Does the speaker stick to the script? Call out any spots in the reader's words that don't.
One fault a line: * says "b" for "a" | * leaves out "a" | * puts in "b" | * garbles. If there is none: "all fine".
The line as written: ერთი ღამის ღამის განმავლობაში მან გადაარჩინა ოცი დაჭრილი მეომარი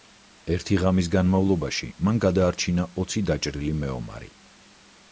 * leaves out "ღამის"